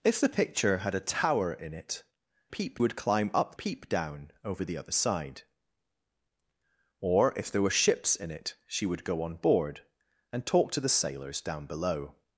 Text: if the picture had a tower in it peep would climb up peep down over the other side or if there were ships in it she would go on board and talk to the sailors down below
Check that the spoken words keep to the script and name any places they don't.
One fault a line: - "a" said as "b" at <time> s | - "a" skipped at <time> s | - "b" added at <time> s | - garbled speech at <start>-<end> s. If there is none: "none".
none